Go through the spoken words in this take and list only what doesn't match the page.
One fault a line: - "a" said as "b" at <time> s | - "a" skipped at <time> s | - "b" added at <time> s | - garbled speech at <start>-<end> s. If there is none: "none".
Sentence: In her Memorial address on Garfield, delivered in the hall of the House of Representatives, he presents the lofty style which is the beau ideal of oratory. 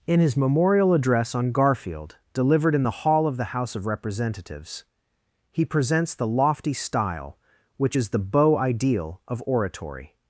- "her" said as "his" at 0.2 s